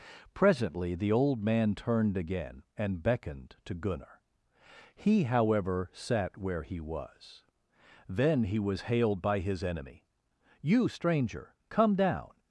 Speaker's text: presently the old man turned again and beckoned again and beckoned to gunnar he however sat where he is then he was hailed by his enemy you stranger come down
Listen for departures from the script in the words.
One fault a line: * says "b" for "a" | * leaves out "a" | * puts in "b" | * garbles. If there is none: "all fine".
* leaves out "again and beckoned"
* says "was" for "is"